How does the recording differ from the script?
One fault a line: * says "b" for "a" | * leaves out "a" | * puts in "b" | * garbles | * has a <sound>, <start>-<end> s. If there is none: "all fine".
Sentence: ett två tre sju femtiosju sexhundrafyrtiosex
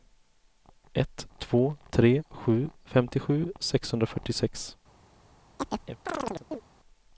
* has a chirp, 5.6-6.6 s